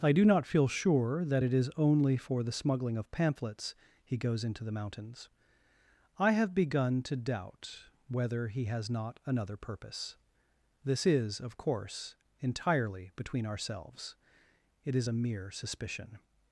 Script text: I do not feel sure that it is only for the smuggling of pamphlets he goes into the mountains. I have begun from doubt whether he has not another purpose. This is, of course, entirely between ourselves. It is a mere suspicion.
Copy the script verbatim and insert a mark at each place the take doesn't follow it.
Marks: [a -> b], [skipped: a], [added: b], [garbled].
I do not feel sure that it is only for the smuggling of pamphlets he goes into the mountains. I have begun [from -> to] doubt whether he has not another purpose. This is, of course, entirely between ourselves. It is a mere suspicion.